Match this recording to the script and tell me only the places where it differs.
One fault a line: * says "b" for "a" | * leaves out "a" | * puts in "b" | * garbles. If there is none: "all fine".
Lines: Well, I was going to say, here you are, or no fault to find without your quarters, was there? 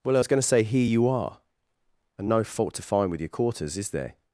* says "and" for "or"
* says "with" for "without"
* says "is" for "was"